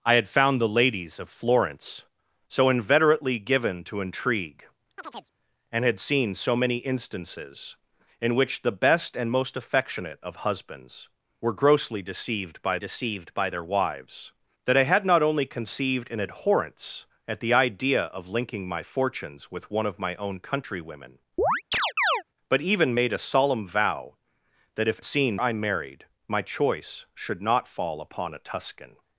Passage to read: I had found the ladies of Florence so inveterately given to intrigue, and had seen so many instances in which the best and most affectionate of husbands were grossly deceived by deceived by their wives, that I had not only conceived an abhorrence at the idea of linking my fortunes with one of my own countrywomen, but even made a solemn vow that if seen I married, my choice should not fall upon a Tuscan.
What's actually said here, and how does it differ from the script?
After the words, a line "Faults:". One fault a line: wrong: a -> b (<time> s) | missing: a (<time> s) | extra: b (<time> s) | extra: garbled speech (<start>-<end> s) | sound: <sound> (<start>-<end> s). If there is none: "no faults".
I had found the ladies of Florence so inveterately given to intrigue, and had seen so many instances in which the best and most affectionate of husbands were grossly deceived by deceived by their wives, that I had not only conceived an abhorrence at the idea of linking my fortunes with one of my own countrywomen, but even made a solemn vow that if seen I married, my choice should not fall upon a Tuscan.
Faults:
sound: chirp (5.0-5.3 s)
sound: chirp (21.4-22.2 s)